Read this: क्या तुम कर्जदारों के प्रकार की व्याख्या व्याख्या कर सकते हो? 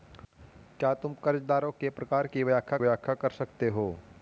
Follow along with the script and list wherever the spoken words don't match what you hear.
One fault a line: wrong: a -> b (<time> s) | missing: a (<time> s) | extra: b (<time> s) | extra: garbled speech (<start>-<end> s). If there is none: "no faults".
no faults